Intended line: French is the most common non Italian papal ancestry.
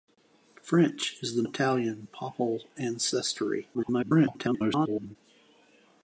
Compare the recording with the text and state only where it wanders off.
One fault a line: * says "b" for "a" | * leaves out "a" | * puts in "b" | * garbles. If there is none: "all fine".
* leaves out "most common non"
* garbles